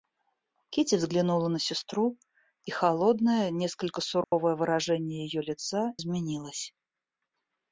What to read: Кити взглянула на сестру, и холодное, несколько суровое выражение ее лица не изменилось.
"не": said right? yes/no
no